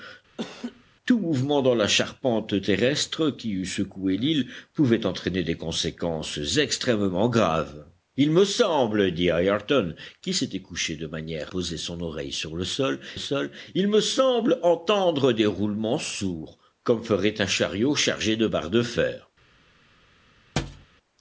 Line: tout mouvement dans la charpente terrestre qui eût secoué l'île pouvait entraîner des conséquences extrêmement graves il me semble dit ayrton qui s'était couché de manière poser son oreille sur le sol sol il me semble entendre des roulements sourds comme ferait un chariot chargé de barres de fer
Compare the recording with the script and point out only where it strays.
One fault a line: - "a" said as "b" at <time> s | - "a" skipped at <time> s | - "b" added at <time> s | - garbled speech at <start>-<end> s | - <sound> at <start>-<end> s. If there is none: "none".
- laugh at 0.4-0.8 s
- thud at 20.6-20.9 s